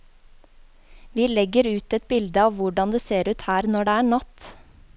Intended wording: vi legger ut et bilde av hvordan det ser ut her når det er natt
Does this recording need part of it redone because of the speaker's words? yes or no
no